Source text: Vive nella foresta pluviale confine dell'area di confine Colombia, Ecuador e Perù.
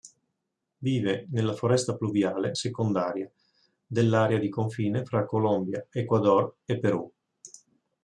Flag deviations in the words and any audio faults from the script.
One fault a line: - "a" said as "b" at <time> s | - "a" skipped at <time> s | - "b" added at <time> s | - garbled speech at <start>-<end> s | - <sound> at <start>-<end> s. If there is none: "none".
- "confine" said as "secondaria" at 2.5 s
- "fra" added at 5.0 s